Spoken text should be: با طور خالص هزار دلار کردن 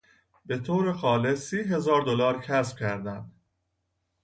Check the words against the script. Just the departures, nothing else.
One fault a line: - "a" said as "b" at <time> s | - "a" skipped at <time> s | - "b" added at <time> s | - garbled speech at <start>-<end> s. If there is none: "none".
- "با" said as "به" at 0.5 s
- "سی" added at 1.5 s
- "کسب" added at 2.4 s